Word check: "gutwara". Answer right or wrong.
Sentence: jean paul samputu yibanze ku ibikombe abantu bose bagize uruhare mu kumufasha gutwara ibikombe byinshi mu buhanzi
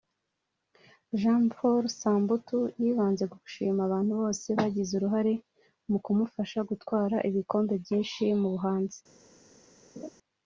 right